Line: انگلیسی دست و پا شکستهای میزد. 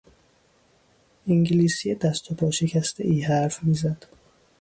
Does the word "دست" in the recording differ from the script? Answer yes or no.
no